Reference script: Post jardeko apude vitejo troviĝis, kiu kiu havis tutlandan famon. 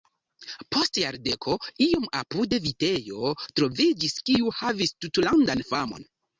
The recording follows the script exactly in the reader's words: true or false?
false